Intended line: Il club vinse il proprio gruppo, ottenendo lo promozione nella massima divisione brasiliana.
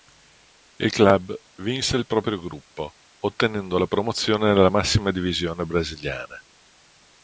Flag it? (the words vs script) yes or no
yes